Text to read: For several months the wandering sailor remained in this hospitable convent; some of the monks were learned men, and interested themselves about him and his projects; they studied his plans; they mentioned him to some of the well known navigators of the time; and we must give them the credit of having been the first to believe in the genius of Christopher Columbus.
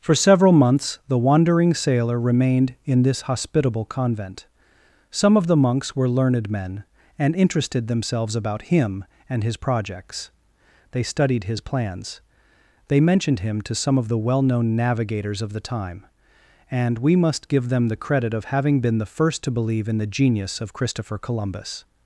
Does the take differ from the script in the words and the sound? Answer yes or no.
no